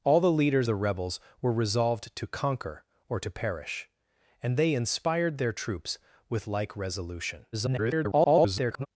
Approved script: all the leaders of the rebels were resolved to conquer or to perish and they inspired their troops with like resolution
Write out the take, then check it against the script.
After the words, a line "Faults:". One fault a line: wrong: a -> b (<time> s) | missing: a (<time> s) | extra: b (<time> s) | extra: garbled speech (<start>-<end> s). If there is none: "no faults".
all the leaders the rebels were resolved to conquer or to perish and they inspired their troops with like resolution [garbled]
Faults:
missing: of (0.7 s)
extra: garbled speech (7.5-8.9 s)